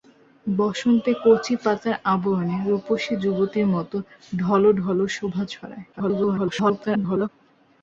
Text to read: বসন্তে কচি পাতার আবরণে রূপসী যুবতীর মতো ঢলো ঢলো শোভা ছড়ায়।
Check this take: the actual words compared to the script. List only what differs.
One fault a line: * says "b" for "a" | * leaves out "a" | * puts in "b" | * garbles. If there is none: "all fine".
* garbles